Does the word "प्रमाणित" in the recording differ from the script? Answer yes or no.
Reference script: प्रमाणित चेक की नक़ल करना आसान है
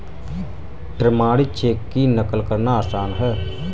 no